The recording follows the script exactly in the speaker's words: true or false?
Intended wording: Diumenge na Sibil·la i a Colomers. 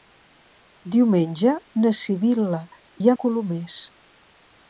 true